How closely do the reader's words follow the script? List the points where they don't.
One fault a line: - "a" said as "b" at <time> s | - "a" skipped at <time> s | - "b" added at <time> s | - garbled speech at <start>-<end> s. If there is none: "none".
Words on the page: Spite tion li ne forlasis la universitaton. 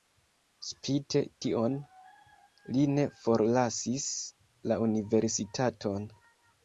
none